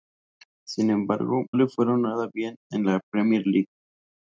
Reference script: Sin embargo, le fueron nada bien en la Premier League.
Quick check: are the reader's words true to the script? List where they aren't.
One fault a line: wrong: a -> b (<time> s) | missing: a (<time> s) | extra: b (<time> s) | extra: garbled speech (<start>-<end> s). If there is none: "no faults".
no faults